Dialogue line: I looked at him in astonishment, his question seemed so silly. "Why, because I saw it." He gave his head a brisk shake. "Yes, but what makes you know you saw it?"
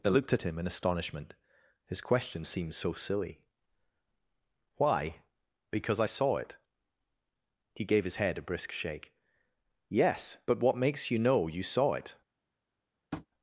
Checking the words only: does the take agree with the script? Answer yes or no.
no